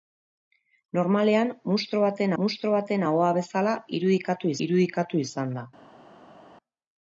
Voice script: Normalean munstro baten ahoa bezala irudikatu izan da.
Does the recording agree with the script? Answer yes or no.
no